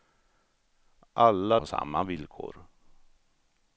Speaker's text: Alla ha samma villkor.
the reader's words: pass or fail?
pass